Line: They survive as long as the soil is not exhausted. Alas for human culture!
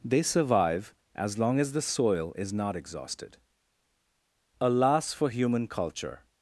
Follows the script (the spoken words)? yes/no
yes